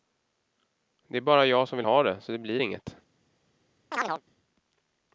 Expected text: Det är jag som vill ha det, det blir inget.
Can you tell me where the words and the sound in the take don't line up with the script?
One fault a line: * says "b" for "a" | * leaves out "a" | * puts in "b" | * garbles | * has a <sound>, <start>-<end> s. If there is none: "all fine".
* puts in "bara"
* puts in "så"
* has a chirp, 3.9-4.2 s